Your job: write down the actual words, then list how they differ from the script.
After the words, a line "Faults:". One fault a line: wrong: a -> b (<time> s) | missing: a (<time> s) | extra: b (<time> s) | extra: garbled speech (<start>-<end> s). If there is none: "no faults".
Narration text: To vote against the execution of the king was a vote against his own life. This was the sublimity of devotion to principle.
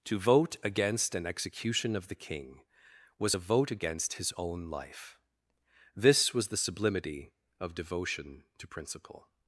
To vote against an execution of the king was a vote against his own life. This was the sublimity of devotion to principle.
Faults:
wrong: the -> an (1.1 s)